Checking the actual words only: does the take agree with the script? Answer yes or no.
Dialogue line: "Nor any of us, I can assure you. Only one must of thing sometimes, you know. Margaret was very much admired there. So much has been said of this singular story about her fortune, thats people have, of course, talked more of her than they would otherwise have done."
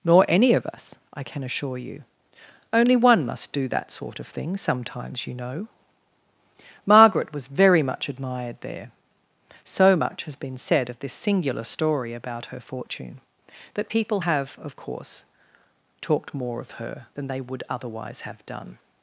no